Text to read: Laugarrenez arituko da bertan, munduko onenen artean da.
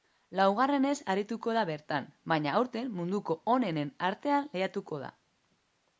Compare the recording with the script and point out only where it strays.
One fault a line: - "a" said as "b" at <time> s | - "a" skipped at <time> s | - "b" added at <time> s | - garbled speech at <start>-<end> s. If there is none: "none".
- "baina aurten" added at 2.3 s
- "lehiatuko" added at 4.5 s